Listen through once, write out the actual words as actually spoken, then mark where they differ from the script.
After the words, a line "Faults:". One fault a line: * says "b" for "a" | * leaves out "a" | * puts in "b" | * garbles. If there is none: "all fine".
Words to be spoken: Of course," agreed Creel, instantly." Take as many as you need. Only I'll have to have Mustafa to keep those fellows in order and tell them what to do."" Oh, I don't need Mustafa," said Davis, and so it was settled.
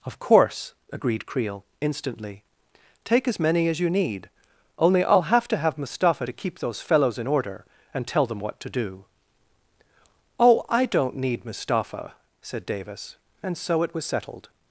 Of course," agreed Creel, instantly." Take as many as you need. Only I'll have to have Mustafa to keep those fellows in order and tell them what to do."" Oh, I don't need Mustafa," said Davis, and so it was settled.
Faults:
all fine